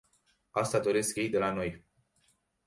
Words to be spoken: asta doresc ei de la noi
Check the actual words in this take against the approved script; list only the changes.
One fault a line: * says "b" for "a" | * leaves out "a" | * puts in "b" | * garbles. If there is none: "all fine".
all fine